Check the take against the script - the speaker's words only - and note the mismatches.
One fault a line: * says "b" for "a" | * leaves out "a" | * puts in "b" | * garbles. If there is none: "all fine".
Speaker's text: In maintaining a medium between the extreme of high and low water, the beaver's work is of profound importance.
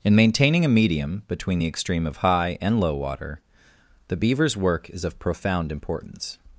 all fine